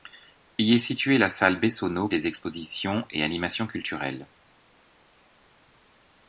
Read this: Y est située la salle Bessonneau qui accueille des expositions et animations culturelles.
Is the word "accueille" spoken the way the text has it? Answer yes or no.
no